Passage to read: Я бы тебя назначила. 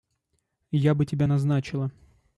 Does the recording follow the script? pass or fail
pass